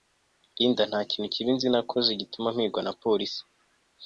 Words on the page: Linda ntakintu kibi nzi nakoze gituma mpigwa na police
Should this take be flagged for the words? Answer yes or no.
no